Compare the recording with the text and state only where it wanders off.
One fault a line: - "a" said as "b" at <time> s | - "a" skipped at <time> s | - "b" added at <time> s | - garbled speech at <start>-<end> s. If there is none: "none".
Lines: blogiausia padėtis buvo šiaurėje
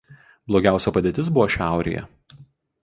none